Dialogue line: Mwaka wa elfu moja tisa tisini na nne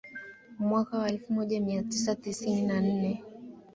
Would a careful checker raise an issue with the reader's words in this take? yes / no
yes